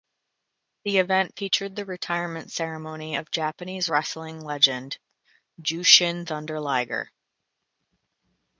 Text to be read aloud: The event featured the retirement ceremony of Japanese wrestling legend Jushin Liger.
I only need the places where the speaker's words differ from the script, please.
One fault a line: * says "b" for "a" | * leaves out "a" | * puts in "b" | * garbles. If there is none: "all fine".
* puts in "Thunder"